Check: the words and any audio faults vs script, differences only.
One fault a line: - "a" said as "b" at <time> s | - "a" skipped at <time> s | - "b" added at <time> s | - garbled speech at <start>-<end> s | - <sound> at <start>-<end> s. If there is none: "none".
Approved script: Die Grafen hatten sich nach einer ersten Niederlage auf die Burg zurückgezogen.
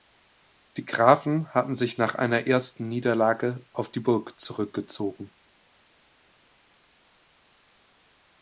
none